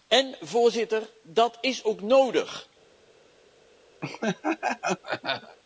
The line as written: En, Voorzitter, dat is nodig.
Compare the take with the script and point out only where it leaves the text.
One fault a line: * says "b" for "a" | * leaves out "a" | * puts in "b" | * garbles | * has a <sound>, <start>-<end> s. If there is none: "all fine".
* puts in "ook"
* has a laugh, 4.0-5.6 s